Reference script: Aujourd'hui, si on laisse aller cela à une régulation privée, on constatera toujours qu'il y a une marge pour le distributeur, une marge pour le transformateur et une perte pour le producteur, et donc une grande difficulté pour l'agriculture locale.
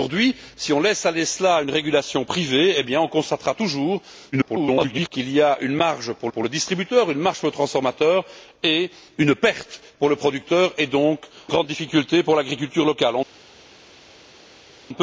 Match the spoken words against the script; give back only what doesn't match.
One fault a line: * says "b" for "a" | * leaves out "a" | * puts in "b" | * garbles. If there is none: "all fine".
* garbles
* puts in "pour"
* leaves out "une"